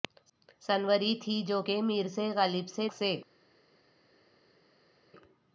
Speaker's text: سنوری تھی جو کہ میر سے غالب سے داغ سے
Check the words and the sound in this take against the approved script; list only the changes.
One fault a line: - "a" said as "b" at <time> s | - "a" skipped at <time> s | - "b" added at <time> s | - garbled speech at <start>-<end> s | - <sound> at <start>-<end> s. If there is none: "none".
- "داغ" skipped at 2.9 s